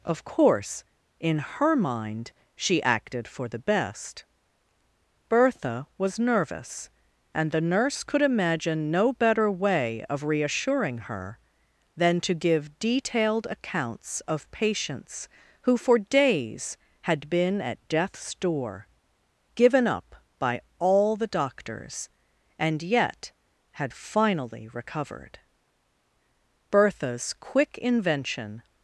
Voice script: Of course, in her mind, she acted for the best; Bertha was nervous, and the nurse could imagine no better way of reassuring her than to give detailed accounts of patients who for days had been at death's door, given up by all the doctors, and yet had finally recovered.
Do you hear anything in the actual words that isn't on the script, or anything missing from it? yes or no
yes